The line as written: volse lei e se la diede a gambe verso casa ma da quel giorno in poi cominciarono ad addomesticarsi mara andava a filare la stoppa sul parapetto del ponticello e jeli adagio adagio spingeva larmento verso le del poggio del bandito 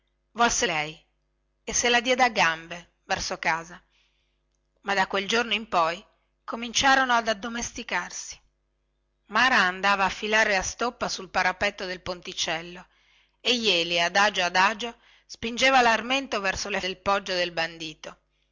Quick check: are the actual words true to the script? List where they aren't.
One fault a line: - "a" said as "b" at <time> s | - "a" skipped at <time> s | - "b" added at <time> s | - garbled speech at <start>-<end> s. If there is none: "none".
none